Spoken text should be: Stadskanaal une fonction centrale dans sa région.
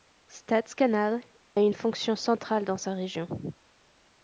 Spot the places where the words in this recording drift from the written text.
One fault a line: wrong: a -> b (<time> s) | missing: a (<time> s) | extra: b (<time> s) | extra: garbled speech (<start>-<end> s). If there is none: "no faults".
no faults